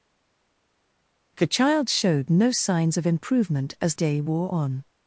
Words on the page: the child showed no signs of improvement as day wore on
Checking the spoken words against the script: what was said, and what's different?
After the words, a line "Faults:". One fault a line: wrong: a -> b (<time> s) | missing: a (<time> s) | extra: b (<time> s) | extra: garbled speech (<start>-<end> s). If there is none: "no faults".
the child showed no signs of improvement as day wore on
Faults:
no faults